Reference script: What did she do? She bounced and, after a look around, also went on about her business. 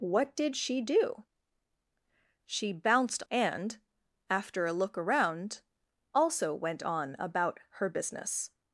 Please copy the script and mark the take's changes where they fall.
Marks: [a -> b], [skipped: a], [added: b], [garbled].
What did she do? She bounced and, after a look around, also went on about her business.